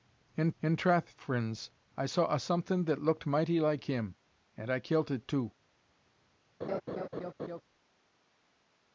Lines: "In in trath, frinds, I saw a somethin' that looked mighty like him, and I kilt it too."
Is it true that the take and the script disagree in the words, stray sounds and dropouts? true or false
true